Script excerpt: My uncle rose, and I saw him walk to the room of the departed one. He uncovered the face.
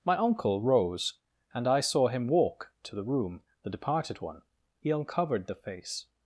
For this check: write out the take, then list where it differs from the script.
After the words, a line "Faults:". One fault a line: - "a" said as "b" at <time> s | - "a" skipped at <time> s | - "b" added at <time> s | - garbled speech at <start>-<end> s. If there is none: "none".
My uncle rose, and I saw him walk to the room the departed one. He uncovered the face.
Faults:
- "of" skipped at 3.4 s